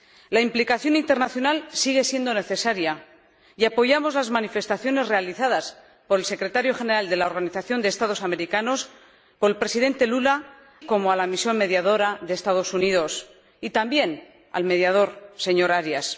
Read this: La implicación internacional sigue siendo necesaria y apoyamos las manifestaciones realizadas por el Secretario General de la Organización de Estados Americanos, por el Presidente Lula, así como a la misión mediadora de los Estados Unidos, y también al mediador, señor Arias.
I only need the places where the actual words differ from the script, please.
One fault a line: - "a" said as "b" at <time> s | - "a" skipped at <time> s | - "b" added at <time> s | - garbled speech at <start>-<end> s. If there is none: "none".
- "así" skipped at 10.4 s